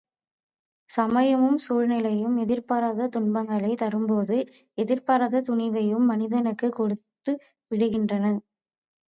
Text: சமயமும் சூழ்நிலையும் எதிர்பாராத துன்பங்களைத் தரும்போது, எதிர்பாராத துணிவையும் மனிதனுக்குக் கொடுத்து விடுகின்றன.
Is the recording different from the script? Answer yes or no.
no